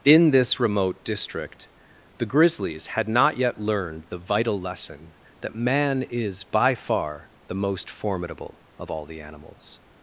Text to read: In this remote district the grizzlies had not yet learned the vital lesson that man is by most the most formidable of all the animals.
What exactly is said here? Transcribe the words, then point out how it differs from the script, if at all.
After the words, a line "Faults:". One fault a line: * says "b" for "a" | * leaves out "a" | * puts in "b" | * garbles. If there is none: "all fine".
In this remote district the grizzlies had not yet learned the vital lesson that man is by far the most formidable of all the animals.
Faults:
* says "far" for "most"